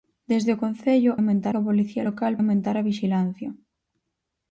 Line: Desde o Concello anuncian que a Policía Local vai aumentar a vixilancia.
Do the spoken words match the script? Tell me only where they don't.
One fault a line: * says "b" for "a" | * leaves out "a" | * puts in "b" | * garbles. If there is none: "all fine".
* says "aumentar" for "anuncian"
* leaves out "vai"